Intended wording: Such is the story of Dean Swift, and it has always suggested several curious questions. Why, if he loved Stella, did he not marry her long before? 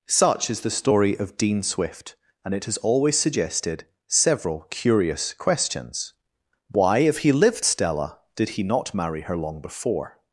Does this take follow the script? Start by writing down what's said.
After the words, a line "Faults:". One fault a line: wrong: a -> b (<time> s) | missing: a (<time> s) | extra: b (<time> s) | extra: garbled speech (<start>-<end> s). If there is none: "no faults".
Such is the story of Dean Swift, and it has always suggested several curious questions. Why, if he lived Stella, did he not marry her long before?
Faults:
wrong: loved -> lived (7.3 s)